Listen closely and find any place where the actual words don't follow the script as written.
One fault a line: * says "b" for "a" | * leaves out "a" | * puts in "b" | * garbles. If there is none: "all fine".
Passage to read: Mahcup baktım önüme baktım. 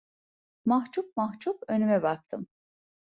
* says "mahcup" for "baktım"